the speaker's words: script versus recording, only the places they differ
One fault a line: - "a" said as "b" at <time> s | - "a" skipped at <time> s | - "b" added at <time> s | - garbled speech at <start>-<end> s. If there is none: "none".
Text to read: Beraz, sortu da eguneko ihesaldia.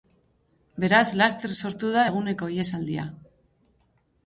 - "laster" added at 1.2 s